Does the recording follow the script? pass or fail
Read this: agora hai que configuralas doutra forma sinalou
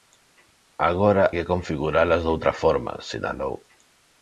fail